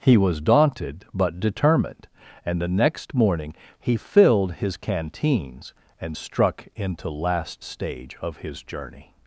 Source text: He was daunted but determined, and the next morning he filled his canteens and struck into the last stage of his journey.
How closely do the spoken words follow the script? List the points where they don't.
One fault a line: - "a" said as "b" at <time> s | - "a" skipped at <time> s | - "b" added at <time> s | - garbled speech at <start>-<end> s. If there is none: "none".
- "the" skipped at 7.1 s